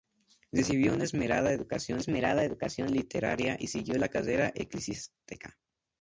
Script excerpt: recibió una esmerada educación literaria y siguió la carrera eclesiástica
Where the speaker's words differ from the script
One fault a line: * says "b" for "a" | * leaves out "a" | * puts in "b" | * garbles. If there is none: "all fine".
* puts in "esmerada educación"